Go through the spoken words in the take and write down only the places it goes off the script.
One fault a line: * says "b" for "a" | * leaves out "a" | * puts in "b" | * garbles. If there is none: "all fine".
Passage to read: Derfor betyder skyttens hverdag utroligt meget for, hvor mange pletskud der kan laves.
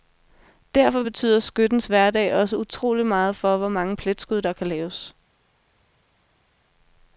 * puts in "også"